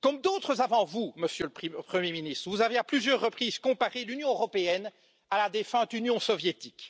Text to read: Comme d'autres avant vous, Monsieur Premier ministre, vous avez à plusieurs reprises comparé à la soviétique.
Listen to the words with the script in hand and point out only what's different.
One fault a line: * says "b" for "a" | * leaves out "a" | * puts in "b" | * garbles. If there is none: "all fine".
* puts in "le"
* puts in "l'Union européenne"
* puts in "défunte Union"